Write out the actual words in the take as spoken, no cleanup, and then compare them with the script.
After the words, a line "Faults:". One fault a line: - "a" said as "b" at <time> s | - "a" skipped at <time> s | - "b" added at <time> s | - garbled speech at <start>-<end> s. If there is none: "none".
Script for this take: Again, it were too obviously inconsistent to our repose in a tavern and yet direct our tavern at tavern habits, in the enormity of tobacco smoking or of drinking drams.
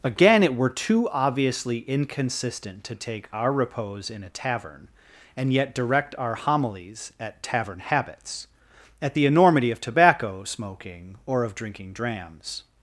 Again, it were too obviously inconsistent to take our repose in a tavern and yet direct our homilies at tavern habits, at the enormity of tobacco smoking or of drinking drams.
Faults:
- "take" added at 3.0 s
- "tavern" said as "homilies" at 6.3 s
- "in" said as "at" at 9.0 s